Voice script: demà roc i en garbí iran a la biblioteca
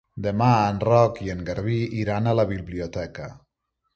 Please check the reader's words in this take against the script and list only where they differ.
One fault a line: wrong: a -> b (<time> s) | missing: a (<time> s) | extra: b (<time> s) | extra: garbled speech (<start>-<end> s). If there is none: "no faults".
extra: en (0.7 s)